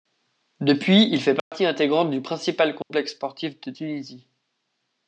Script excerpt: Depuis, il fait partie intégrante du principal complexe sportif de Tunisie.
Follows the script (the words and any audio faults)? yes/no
no